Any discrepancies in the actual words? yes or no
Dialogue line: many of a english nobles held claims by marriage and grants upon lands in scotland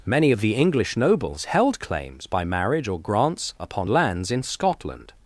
yes